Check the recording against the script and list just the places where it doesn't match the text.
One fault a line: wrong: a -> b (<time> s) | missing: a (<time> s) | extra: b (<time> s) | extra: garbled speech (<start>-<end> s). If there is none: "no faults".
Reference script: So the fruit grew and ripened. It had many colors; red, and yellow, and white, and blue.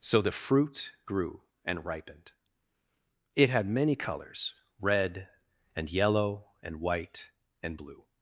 no faults